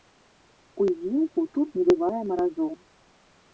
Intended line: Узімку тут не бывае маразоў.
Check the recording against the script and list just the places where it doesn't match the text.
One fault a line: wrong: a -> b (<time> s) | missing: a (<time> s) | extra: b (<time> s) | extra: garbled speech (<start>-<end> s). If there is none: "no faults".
no faults